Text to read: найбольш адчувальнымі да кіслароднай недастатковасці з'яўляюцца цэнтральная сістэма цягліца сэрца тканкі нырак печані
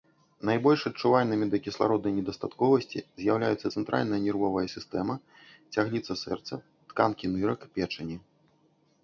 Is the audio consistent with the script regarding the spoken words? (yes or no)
no